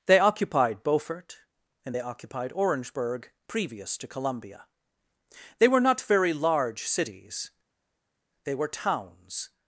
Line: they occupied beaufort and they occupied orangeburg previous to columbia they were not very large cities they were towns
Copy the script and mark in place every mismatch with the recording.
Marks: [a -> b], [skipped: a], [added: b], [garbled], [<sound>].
they occupied beaufort and they occupied orangeburg previous to columbia they were not very large cities they were towns